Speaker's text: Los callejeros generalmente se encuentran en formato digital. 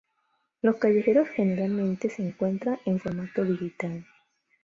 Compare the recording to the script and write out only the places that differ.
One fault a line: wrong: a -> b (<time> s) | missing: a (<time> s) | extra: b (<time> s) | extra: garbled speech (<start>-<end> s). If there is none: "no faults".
no faults